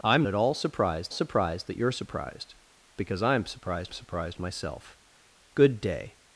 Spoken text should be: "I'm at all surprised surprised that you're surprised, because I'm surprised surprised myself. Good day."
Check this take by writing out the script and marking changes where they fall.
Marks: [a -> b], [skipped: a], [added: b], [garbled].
"I'm at all surprised surprised that you're surprised, because I'm surprised surprised myself. Good day."